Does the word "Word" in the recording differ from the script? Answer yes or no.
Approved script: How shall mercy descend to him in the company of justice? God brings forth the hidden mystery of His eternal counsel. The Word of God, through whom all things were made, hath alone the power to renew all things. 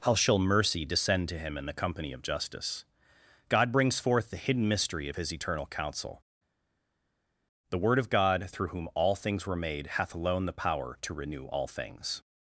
no